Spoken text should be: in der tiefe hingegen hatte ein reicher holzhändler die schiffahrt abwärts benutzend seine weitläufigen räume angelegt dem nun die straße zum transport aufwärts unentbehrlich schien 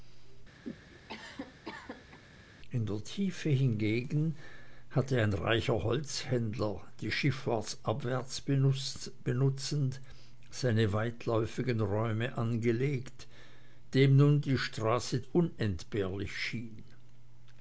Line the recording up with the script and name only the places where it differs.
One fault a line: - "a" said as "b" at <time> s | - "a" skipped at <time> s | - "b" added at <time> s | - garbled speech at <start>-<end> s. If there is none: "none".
- "zum transport aufwärts" skipped at 15.2 s